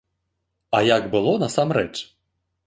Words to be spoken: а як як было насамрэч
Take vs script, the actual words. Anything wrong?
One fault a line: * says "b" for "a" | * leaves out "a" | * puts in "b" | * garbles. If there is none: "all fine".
* leaves out "як"